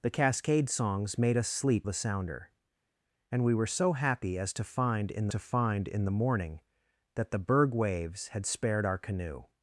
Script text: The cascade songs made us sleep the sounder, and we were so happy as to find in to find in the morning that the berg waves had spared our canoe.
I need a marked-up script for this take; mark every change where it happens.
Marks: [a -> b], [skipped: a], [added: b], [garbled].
The cascade songs made us sleep the sounder, and we were so happy as to find in to find in the morning that the berg waves had spared our canoe.